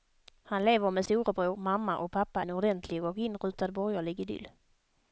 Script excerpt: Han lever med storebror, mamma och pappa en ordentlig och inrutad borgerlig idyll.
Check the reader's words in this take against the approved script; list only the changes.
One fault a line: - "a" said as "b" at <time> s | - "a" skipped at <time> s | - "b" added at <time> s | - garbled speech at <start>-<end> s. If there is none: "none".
none